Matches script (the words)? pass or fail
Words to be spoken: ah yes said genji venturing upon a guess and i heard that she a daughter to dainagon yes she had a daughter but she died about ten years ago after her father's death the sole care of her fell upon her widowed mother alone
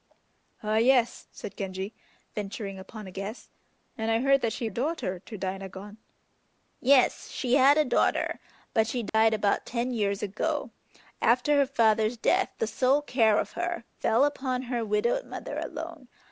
pass